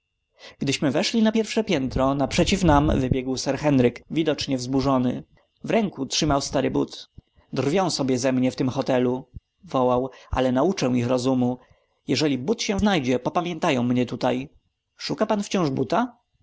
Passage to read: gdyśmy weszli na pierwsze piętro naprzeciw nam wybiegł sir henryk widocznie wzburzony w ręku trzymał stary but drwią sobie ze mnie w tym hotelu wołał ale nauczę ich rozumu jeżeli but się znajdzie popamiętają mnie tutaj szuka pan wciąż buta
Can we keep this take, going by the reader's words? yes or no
yes